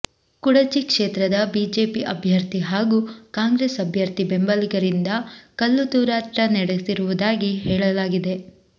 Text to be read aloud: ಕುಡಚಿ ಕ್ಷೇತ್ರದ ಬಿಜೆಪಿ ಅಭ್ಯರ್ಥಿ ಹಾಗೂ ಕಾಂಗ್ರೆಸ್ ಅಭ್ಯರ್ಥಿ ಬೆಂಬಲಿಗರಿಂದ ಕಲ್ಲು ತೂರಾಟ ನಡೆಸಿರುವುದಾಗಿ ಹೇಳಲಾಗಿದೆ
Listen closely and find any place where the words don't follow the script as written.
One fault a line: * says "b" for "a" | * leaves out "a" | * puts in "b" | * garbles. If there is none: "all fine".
all fine